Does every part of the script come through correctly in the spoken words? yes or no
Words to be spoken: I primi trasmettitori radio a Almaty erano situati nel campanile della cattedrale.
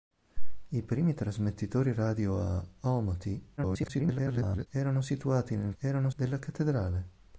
no